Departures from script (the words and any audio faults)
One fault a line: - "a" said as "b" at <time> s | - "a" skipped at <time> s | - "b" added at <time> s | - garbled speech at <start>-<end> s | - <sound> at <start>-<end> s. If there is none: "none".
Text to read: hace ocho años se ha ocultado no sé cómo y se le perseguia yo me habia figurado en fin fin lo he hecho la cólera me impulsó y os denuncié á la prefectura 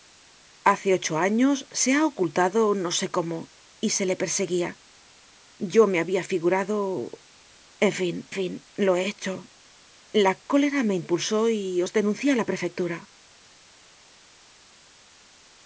none